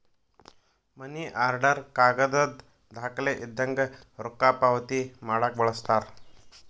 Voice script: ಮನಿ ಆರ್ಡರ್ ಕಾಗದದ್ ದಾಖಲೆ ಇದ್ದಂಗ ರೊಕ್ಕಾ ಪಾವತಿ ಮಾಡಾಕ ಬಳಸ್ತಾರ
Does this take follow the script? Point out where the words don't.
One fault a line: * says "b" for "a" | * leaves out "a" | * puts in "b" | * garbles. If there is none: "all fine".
all fine